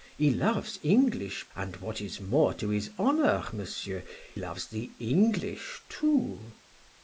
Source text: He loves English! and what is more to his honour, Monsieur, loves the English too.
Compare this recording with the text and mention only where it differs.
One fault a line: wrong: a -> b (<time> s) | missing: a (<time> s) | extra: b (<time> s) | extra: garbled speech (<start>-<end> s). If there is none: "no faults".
no faults